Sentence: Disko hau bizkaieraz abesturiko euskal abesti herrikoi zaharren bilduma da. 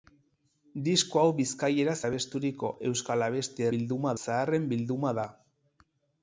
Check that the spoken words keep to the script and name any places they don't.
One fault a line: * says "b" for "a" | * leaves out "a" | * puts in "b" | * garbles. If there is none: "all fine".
* says "bilduma" for "herrikoi"